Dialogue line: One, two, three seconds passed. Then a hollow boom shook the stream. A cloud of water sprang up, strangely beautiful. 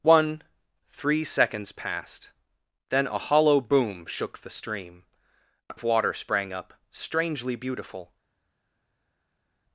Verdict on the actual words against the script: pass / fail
fail